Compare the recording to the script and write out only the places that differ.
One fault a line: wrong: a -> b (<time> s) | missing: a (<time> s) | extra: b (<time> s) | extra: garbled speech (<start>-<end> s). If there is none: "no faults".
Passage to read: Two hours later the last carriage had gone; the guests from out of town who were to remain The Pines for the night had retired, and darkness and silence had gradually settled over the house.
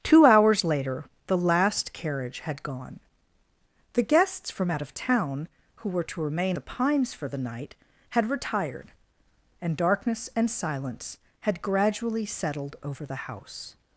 no faults